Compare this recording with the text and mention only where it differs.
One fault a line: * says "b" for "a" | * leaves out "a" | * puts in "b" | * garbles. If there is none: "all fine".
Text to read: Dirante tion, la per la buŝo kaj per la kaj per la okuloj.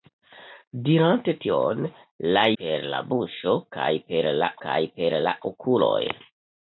all fine